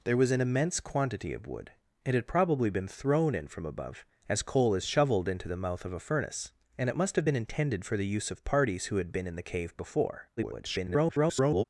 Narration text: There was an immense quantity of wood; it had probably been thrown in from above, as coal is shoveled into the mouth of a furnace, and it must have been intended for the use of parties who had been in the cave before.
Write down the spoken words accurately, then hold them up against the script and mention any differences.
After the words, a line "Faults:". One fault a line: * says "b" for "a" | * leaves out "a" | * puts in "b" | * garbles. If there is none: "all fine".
There was an immense quantity of wood; it had probably been thrown in from above, as coal is shoveled into the mouth of a furnace, and it must have been intended for the use of parties who had been in the cave before. [garbled]
Faults:
* garbles